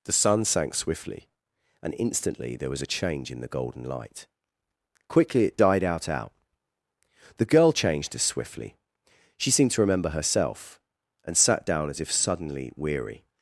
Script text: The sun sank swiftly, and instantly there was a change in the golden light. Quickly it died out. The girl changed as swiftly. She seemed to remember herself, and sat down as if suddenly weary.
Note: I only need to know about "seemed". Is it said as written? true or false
true